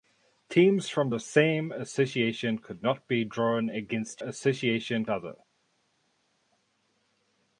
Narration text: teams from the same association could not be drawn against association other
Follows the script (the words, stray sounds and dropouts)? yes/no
yes